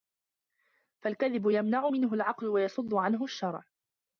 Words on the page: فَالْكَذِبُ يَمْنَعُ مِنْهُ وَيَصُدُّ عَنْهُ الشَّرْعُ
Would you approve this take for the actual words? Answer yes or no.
no